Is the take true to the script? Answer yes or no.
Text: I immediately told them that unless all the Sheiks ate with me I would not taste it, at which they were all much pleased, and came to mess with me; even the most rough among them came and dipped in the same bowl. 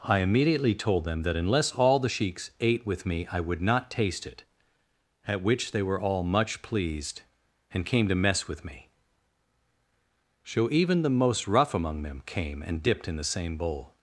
no